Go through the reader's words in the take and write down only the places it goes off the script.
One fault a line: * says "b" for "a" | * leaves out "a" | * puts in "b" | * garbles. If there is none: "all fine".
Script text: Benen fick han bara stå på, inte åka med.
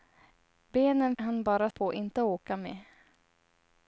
* leaves out "fick"
* leaves out "stå"